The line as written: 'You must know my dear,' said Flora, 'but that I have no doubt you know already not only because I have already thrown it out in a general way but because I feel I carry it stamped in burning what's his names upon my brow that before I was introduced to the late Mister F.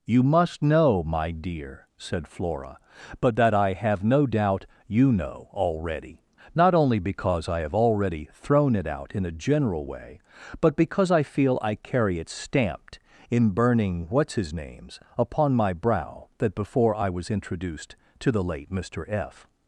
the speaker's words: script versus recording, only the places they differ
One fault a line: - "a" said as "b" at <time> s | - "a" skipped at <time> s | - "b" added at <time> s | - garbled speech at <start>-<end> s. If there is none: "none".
none